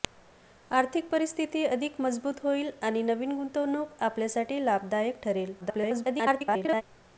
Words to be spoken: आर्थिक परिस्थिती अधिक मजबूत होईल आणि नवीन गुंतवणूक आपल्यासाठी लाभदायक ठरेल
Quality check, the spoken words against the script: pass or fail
fail